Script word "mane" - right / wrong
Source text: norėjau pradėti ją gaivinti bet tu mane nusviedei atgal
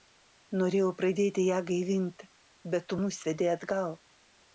wrong